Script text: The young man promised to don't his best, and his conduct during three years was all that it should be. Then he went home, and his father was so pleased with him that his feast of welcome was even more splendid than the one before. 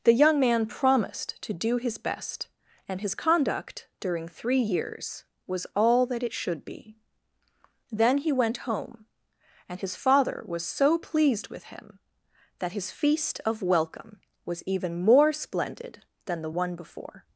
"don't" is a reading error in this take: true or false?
true